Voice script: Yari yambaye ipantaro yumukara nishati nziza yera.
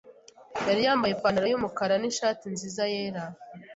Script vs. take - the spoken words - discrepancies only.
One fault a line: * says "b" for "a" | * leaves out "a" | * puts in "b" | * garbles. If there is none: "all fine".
all fine